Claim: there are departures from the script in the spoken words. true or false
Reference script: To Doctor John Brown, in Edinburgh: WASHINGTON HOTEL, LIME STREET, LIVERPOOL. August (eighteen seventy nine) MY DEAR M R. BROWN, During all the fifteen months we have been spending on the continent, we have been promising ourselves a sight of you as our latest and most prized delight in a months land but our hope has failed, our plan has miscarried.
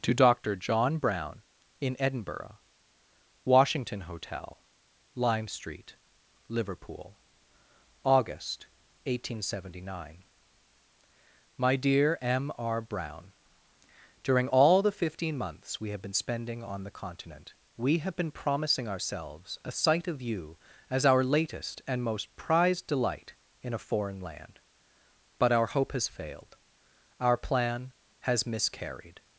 true